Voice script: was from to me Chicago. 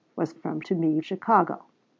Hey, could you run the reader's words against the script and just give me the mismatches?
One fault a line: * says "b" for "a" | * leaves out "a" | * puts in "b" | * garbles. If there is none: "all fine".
all fine